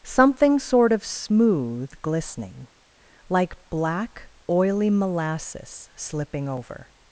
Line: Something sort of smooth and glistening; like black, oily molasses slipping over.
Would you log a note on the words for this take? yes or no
yes